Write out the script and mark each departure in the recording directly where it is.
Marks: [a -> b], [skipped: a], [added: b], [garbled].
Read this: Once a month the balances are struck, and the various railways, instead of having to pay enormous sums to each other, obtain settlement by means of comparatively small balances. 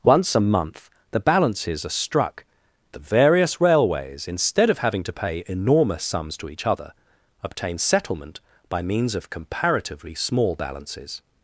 Once a month the balances are struck, [skipped: and] the various railways, instead of having to pay enormous sums to each other, obtain settlement by means of comparatively small balances.